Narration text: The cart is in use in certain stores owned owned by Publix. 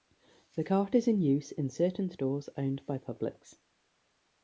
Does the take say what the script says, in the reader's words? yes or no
no